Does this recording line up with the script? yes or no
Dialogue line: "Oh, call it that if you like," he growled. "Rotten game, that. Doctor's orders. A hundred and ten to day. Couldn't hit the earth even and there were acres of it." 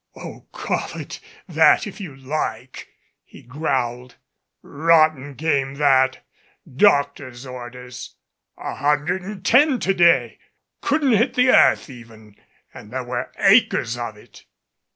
yes